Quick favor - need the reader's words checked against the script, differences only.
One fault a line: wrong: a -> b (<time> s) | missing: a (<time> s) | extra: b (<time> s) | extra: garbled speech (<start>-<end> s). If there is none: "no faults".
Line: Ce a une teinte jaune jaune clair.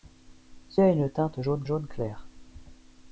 no faults